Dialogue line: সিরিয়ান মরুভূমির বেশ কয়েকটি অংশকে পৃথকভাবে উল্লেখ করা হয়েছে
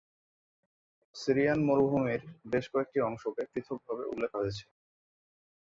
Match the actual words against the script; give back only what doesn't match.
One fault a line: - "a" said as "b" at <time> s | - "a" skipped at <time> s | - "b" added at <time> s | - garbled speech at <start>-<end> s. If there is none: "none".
- "করা" skipped at 4.3 s